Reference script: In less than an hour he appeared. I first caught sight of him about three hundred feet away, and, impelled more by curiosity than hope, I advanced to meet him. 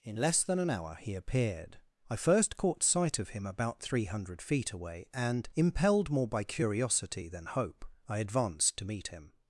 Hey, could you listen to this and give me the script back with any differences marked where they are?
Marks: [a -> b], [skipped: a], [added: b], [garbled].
In less than an hour he appeared. I first caught sight of him about three hundred feet away, and, impelled more by curiosity than hope, I advanced to meet him.